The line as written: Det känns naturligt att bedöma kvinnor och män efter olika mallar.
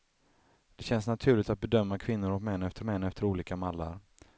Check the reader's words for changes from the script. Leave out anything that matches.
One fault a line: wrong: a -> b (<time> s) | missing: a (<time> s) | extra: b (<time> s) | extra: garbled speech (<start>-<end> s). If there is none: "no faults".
extra: män efter (2.8 s)